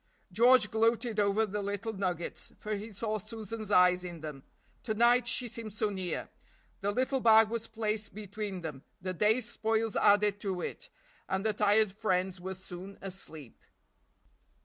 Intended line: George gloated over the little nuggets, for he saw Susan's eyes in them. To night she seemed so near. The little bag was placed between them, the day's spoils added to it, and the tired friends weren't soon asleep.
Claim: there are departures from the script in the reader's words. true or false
true